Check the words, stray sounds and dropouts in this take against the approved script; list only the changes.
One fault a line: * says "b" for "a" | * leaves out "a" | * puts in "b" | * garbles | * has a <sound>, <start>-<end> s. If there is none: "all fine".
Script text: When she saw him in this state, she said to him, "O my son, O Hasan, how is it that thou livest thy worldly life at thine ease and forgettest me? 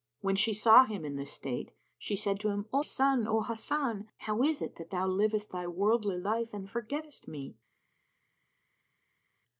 * leaves out "my"
* leaves out "at thine ease"